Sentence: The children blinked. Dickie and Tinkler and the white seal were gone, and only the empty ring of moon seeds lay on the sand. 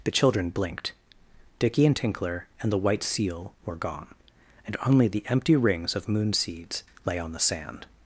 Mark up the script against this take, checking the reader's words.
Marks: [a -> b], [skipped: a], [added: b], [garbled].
The children blinked. Dickie and Tinkler and the white seal were gone, and only the empty [ring -> rings] of moon seeds lay on the sand.